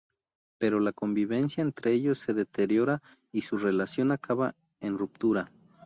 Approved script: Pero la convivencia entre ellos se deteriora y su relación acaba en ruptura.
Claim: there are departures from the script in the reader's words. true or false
false